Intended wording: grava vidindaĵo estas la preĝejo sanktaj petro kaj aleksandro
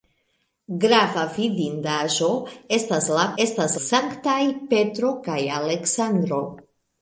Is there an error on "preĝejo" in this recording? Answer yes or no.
yes